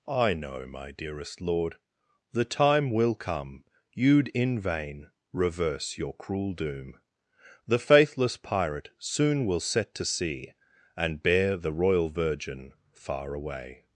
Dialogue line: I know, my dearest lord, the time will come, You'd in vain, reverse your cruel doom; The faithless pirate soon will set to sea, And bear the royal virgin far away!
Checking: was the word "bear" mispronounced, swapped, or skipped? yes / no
no